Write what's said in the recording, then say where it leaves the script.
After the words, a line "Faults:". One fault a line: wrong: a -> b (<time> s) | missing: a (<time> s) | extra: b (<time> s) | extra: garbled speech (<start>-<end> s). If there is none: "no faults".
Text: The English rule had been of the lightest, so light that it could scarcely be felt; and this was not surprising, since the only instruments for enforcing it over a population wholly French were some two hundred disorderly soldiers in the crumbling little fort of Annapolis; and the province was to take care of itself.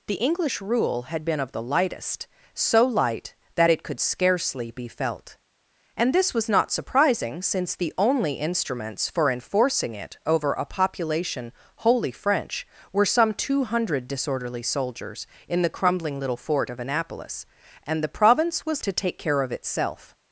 The English rule had been of the lightest, so light that it could scarcely be felt; and this was not surprising, since the only instruments for enforcing it over a population wholly French were some two hundred disorderly soldiers in the crumbling little fort of Annapolis; and the province was to take care of itself.
Faults:
no faults